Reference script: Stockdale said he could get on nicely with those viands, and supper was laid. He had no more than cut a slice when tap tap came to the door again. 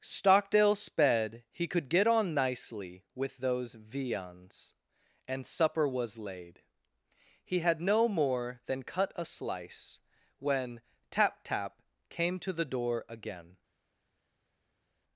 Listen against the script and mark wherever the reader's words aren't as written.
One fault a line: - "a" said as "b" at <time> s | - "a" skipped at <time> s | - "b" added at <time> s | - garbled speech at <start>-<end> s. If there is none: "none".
- "said" said as "sped" at 0.7 s